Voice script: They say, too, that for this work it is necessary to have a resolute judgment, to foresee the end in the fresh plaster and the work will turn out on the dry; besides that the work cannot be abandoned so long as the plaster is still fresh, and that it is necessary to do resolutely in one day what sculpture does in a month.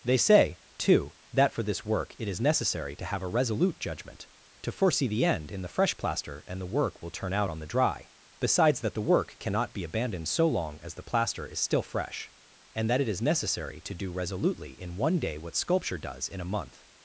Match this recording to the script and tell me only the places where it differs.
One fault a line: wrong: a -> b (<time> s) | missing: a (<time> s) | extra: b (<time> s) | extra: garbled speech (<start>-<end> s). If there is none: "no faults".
no faults